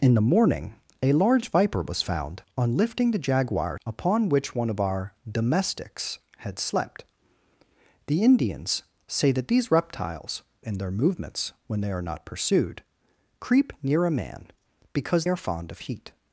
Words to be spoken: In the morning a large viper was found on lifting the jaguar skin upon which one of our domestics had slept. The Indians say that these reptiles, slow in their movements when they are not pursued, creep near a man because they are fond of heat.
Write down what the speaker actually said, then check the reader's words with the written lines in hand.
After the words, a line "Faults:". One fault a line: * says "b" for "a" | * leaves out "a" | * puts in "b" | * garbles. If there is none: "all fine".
In the morning a large viper was found on lifting the jaguar upon which one of our domestics had slept. The Indians say that these reptiles, in their movements when they are not pursued, creep near a man because are fond of heat.
Faults:
* leaves out "skin"
* leaves out "slow"
* leaves out "they"